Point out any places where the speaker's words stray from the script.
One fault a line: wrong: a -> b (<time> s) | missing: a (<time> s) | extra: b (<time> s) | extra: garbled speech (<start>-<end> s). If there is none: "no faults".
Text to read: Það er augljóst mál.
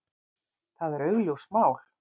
no faults